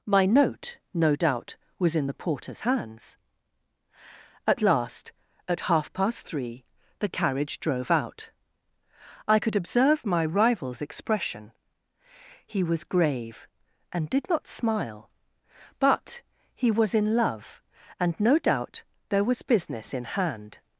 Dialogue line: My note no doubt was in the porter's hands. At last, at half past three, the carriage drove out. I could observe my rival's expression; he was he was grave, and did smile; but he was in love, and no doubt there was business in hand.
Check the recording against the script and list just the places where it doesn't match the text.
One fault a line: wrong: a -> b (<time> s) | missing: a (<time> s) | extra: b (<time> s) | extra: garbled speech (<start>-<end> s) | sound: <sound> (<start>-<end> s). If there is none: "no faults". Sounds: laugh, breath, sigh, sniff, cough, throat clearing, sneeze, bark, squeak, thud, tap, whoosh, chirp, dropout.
missing: he was (12.8 s)
extra: not (14.3 s)